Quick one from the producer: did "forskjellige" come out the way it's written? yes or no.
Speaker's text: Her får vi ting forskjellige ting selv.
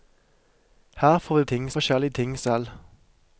yes